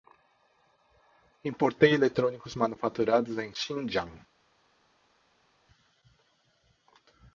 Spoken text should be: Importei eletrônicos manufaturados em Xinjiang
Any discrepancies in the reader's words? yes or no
no